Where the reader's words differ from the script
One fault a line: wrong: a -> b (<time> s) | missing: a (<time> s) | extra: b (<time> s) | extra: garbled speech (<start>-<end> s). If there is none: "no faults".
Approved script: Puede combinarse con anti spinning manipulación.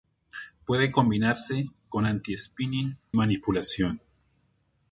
no faults